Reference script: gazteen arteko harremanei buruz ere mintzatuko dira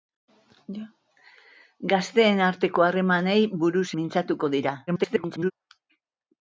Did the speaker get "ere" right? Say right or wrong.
wrong